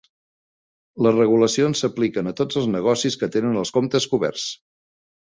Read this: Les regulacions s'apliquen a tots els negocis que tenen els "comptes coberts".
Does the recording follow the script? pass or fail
pass